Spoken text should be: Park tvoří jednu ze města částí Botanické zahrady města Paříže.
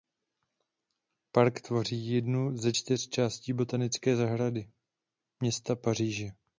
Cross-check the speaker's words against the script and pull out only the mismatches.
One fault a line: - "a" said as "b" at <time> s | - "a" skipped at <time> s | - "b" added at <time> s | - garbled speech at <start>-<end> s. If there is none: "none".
- "města" said as "čtyř" at 2.7 s